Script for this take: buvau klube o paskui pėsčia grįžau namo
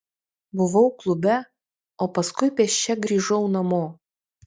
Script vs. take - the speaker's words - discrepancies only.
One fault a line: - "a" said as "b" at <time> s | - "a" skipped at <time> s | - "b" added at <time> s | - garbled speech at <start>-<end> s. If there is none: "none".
none